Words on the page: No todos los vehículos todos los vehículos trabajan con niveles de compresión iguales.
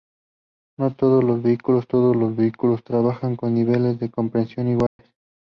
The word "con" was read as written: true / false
true